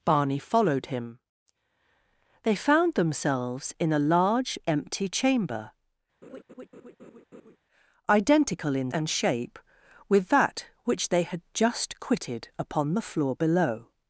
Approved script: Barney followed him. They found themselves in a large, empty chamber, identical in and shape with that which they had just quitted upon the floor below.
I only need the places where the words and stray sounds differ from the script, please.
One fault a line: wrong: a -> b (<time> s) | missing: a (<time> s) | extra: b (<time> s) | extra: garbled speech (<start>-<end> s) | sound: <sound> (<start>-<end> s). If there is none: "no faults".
sound: laugh (6.2-7.6 s)